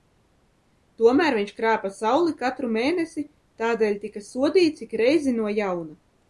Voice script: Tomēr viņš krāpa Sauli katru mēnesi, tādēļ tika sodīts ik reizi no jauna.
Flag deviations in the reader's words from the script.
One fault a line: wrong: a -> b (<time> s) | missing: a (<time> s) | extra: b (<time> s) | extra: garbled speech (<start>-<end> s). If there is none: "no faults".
no faults